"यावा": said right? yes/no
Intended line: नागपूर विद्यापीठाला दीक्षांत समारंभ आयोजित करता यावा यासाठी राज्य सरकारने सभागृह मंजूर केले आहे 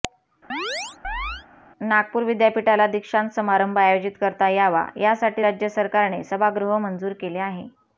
yes